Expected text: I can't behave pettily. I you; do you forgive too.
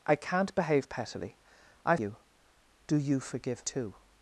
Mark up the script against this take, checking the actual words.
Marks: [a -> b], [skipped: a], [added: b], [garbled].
I can't behave pettily. I you; do you forgive too.